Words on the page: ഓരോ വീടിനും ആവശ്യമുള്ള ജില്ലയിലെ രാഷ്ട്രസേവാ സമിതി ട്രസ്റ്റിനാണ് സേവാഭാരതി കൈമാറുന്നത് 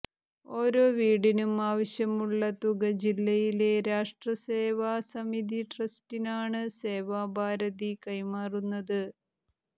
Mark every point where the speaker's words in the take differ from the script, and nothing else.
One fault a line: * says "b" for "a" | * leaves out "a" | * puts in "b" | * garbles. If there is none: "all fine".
* puts in "തുക"